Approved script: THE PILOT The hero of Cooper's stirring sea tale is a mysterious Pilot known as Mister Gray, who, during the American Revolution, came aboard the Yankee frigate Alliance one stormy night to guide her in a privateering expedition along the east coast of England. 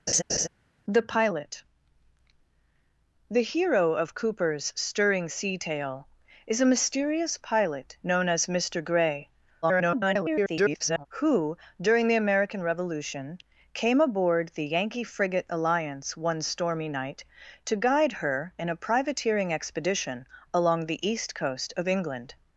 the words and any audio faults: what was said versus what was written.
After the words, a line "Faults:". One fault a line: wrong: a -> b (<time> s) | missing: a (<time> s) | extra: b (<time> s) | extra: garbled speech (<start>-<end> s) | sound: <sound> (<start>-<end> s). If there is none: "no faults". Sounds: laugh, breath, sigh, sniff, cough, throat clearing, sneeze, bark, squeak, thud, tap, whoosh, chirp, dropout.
THE PILOT The hero of Cooper's stirring sea tale is a mysterious Pilot known as Mister Gray, [garbled] who, during the American Revolution, came aboard the Yankee frigate Alliance one stormy night to guide her in a privateering expedition along the east coast of England.
Faults:
sound: laugh (0.1-0.5 s)
extra: garbled speech (9.6-11.1 s)